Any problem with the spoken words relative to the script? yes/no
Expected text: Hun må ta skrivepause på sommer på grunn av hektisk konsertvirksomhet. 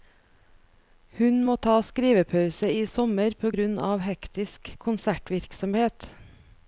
yes